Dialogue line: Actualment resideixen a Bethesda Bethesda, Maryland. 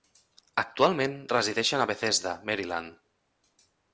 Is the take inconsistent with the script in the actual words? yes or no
yes